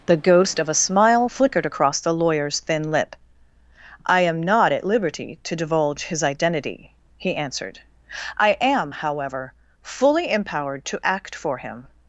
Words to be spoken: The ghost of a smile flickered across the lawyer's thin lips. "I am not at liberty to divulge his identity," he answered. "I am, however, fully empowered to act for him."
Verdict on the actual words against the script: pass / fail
fail